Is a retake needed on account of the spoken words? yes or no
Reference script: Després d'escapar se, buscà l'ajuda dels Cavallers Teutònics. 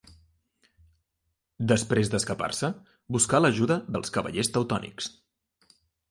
no